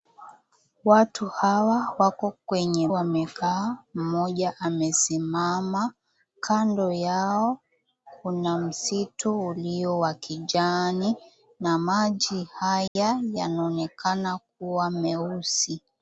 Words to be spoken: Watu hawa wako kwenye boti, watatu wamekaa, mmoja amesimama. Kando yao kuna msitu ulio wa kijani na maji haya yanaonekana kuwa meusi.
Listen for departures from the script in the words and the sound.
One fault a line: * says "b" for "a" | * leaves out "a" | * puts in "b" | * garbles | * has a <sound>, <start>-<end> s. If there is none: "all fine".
* leaves out "boti watatu"
* has a dropout, 12.9-13.0 s